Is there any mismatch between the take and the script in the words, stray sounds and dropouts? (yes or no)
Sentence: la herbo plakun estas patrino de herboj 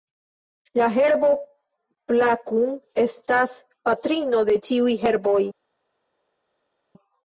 yes